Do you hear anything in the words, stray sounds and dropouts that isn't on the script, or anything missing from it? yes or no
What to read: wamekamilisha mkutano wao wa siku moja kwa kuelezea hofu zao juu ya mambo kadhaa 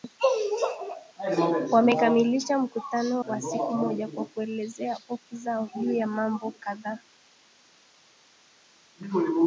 yes